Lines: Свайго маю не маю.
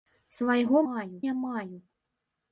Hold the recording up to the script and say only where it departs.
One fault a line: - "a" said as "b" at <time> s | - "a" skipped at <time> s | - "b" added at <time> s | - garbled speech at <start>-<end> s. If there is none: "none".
none